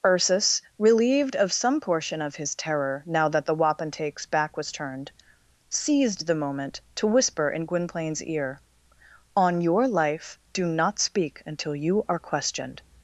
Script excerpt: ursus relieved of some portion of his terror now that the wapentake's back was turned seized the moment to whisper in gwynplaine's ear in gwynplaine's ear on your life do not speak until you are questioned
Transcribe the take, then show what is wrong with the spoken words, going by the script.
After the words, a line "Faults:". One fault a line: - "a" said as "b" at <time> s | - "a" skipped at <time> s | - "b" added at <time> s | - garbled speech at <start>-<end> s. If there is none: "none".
ursus relieved of some portion of his terror now that the wapentake's back was turned seized the moment to whisper in gwynplaine's ear on your life do not speak until you are questioned
Faults:
- "in gwynplaine's ear" skipped at 8.6 s